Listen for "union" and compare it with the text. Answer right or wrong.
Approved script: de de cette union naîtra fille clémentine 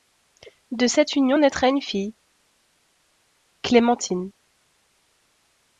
right